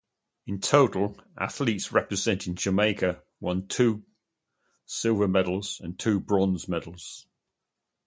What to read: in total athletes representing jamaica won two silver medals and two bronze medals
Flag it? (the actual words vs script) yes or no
no